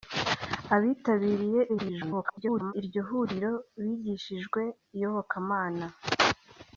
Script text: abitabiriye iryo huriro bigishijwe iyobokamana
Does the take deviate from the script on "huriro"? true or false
false